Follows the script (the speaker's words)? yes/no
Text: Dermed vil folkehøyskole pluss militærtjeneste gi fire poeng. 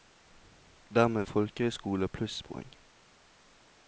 no